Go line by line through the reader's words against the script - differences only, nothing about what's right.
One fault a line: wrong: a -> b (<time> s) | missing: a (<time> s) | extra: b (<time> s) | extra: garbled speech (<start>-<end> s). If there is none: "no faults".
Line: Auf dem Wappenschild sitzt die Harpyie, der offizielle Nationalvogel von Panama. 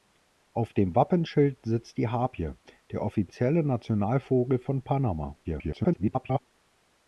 extra: garbled speech (5.4-6.4 s)